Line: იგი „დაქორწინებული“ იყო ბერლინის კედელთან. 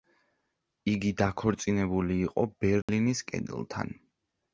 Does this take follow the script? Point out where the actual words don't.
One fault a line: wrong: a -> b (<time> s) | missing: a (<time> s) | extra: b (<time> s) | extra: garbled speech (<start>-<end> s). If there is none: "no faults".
no faults